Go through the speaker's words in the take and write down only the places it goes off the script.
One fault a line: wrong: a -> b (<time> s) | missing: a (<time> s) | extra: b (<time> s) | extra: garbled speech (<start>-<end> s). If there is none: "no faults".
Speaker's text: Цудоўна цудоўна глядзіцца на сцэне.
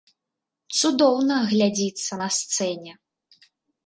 missing: цудоўна (1.4 s)